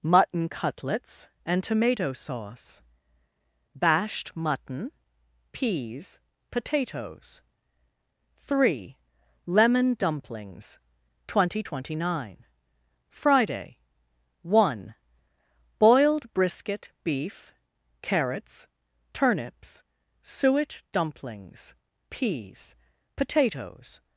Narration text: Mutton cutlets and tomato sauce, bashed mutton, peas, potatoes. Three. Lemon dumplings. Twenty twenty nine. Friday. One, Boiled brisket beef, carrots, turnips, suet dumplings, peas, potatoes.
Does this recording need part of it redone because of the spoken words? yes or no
no